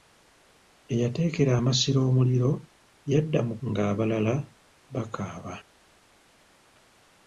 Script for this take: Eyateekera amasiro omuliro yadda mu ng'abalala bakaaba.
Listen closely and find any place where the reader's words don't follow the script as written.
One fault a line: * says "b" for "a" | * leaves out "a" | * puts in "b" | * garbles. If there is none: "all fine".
all fine